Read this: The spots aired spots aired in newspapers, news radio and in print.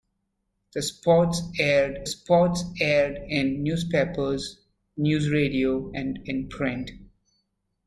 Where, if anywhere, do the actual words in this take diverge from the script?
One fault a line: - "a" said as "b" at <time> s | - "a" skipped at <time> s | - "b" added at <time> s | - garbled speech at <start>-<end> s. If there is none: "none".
none